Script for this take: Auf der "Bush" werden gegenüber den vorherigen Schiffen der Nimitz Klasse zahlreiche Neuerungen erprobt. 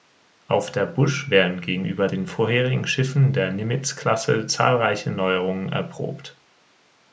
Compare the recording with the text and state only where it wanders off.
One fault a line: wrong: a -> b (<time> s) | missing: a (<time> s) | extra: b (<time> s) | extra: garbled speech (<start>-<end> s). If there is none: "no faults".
no faults